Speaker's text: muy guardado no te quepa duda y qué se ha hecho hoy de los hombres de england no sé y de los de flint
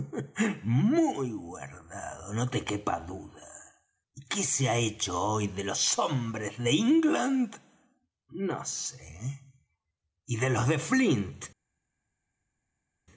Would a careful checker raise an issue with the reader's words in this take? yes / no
no